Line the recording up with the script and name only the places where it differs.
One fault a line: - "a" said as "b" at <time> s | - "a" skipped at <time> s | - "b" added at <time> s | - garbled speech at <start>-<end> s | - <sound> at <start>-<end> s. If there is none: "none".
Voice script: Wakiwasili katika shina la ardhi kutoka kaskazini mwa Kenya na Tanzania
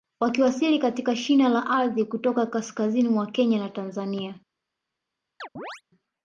- chirp at 5.4-5.8 s